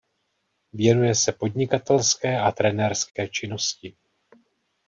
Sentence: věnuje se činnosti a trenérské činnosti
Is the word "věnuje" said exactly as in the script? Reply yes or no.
yes